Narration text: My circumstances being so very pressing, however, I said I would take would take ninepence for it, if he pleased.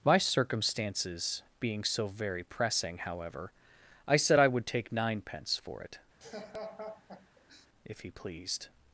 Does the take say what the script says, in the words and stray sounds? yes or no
no